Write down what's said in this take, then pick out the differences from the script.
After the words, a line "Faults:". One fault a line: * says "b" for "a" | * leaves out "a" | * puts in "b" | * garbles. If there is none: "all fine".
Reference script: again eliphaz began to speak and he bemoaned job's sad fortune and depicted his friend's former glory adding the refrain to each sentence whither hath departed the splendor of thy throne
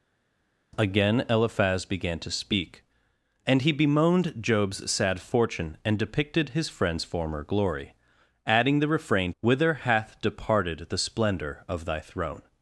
again eliphaz began to speak and he bemoaned job's sad fortune and depicted his friend's former glory adding the refrain whither hath departed the splendor of thy throne
Faults:
* leaves out "to each sentence"